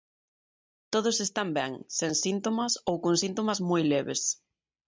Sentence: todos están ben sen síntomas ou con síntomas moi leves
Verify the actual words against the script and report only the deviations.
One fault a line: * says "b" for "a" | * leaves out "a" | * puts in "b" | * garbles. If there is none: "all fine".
all fine